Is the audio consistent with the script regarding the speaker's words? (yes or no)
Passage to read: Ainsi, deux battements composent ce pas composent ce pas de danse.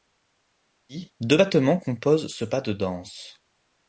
no